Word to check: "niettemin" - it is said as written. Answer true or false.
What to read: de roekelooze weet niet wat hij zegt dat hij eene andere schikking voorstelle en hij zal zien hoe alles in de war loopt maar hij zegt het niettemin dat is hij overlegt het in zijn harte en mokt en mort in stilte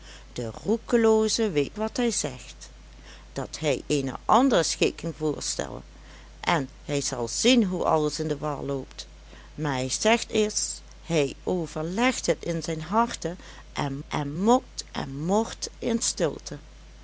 false